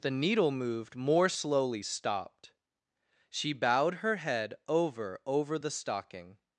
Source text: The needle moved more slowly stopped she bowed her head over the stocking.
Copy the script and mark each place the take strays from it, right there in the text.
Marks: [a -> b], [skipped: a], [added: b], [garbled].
The needle moved more slowly stopped she bowed her head over [added: over] the stocking.